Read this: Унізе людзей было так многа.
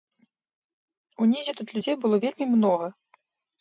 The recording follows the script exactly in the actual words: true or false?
false